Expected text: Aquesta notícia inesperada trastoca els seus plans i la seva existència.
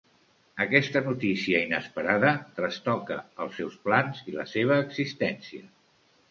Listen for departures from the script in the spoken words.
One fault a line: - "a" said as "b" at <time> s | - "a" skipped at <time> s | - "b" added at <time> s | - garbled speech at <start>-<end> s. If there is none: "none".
none